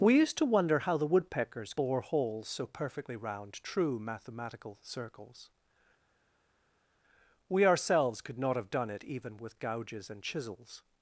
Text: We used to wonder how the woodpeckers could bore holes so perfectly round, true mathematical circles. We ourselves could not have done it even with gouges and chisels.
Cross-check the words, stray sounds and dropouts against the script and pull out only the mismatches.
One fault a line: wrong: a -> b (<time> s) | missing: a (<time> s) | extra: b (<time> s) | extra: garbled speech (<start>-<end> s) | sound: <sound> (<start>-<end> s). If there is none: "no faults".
missing: could (1.8 s)